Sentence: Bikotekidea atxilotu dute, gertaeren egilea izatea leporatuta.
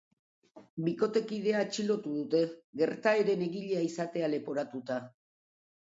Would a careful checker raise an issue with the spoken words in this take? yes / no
no